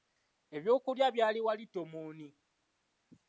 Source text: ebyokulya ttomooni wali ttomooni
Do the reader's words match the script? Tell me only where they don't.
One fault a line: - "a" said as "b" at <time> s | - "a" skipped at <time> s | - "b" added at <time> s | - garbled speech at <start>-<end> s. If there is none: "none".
- "ttomooni" said as "byali" at 1.1 s